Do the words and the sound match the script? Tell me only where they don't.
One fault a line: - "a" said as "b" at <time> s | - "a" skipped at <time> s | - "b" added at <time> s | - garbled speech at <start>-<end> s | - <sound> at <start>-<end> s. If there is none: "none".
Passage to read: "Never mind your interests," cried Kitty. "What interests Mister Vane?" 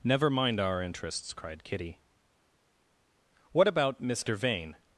- "your" said as "our" at 0.6 s
- "interests" said as "about" at 3.7 s